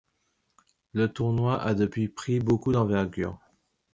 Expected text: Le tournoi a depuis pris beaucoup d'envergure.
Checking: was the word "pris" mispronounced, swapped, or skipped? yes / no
no